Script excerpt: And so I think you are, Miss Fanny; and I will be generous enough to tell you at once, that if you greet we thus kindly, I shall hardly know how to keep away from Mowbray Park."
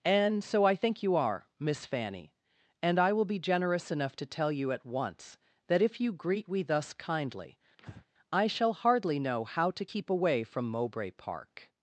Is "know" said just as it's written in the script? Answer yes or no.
yes